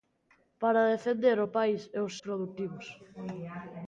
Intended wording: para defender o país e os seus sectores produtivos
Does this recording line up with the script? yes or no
no